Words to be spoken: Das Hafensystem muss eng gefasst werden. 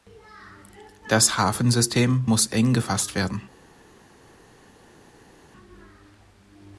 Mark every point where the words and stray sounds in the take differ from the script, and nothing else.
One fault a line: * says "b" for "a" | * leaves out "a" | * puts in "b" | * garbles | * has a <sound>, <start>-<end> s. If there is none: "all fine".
all fine